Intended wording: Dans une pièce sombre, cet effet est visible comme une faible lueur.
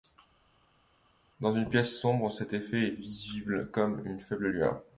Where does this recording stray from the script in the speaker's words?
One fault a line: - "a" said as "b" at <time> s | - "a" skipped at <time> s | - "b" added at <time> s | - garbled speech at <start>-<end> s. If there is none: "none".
none